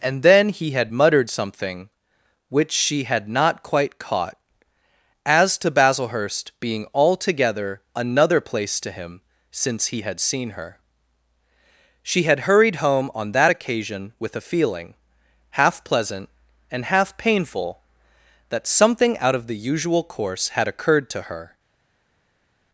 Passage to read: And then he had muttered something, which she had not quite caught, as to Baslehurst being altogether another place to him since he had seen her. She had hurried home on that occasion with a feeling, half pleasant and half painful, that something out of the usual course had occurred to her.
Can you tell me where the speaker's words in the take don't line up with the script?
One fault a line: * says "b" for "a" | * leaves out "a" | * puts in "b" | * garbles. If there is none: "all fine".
all fine